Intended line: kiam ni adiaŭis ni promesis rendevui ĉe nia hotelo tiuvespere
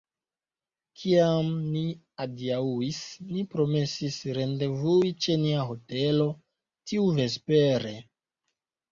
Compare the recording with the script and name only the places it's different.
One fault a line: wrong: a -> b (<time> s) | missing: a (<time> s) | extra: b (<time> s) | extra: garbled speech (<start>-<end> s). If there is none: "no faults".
no faults